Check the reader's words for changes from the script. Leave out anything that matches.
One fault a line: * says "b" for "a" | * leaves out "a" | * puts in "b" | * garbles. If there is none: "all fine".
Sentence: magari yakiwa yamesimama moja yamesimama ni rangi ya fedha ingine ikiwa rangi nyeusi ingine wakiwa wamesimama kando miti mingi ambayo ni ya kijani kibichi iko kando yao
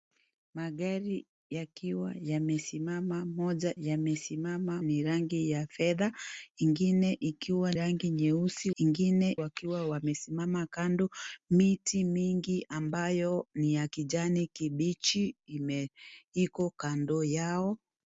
all fine